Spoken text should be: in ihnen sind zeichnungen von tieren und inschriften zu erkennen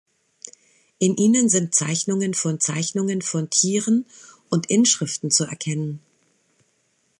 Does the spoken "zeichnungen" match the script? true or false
true